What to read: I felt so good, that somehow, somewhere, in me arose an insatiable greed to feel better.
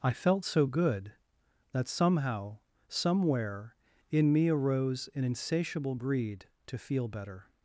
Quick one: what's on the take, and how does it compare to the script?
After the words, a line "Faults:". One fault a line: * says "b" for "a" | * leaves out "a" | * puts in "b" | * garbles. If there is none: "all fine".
I felt so good, that somehow, somewhere, in me arose an insatiable greed to feel better.
Faults:
all fine